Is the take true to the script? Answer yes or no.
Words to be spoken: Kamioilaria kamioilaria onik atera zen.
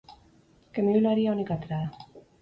no